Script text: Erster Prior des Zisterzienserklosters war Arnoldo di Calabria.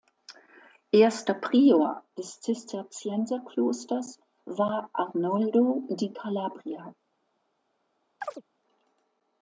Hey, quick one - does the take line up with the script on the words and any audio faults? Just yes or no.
no